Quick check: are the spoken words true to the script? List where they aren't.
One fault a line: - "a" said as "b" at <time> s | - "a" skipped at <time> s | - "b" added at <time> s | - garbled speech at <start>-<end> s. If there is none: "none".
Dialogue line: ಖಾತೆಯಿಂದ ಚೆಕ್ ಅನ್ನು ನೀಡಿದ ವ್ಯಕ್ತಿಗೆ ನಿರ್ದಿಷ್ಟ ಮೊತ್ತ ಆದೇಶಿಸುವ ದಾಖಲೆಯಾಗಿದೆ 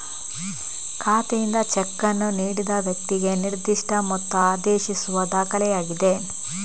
none